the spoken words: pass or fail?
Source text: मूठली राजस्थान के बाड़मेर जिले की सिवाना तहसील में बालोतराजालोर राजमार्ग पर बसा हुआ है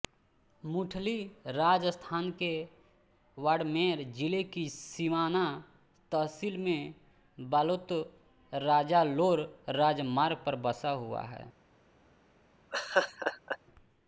pass